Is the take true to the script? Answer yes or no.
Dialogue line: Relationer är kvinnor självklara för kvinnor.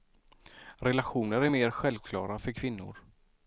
no